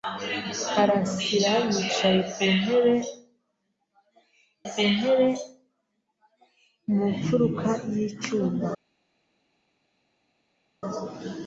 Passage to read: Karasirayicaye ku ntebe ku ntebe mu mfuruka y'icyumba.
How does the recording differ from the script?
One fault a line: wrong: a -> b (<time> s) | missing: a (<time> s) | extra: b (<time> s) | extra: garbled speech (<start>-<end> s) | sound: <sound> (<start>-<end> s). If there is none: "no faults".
no faults